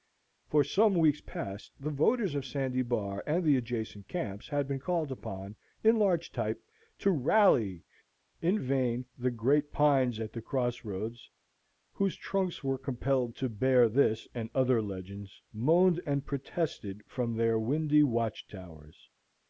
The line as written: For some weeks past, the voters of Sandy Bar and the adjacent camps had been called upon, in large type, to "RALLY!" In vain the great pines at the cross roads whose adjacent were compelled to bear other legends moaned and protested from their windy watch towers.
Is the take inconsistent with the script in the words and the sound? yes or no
yes